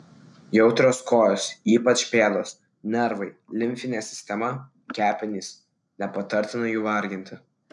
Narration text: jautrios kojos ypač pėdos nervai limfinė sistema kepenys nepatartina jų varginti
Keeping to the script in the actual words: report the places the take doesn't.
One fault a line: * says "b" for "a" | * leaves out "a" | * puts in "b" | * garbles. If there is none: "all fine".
all fine